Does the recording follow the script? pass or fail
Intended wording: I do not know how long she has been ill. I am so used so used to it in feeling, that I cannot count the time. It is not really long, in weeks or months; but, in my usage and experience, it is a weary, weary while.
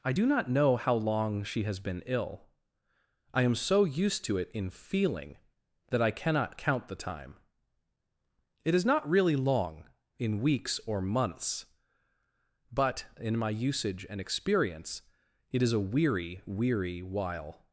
fail